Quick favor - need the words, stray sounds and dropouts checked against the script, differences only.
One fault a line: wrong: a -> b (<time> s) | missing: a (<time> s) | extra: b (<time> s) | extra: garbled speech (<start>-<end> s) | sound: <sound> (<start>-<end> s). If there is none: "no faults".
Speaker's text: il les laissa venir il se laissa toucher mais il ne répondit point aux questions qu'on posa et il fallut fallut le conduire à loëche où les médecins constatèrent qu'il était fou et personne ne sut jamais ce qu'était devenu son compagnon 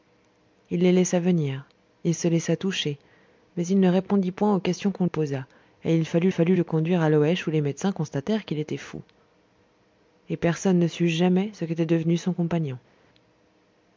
no faults